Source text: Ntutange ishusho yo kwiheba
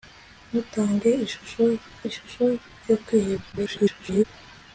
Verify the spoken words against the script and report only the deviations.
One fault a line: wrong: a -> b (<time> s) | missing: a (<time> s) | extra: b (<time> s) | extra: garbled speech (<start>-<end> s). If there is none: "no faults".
extra: ishusho (2.1 s)
extra: garbled speech (3.5-4.2 s)